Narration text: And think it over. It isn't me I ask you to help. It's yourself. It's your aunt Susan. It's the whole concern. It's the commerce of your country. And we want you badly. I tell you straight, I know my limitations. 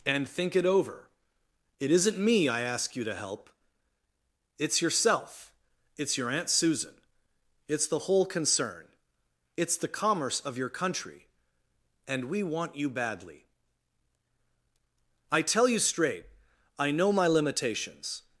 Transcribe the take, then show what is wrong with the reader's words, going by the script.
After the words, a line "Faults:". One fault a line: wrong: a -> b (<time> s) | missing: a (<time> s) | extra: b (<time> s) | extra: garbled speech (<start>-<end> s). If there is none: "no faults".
And think it over. It isn't me I ask you to help. It's yourself. It's your aunt Susan. It's the whole concern. It's the commerce of your country. And we want you badly. I tell you straight, I know my limitations.
Faults:
no faults